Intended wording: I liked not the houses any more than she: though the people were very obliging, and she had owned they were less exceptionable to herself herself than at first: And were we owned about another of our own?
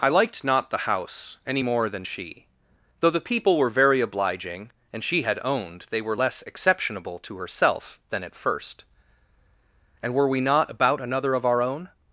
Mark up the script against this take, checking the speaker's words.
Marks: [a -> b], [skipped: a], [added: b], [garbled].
I liked not the [houses -> house] any more than she: though the people were very obliging, and she had owned they were less exceptionable to herself [skipped: herself] than at first: And were we [owned -> not] about another of our own?